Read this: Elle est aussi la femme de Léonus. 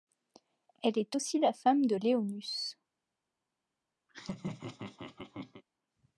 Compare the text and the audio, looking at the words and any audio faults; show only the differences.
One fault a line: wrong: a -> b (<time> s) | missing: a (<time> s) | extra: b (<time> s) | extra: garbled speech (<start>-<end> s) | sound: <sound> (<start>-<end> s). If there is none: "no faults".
sound: laugh (4.1-5.6 s)